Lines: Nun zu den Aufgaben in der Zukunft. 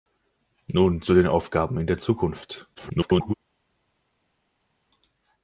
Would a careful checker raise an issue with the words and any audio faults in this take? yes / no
yes